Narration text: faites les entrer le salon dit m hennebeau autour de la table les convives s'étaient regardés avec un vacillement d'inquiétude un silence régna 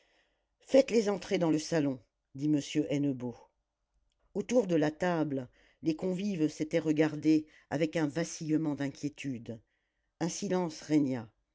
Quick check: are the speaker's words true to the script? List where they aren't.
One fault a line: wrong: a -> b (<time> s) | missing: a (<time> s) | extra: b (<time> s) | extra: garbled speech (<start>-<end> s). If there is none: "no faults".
extra: dans (1.4 s)